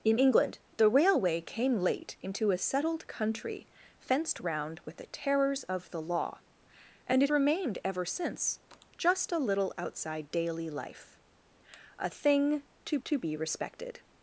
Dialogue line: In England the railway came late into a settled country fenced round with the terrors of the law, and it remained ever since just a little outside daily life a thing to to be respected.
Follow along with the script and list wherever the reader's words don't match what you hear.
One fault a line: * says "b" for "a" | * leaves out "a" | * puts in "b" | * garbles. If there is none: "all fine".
all fine